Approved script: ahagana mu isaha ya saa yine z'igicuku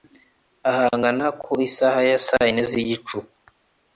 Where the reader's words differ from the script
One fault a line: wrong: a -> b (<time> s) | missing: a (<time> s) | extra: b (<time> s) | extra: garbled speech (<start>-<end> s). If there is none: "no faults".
wrong: mu -> ku (1.4 s)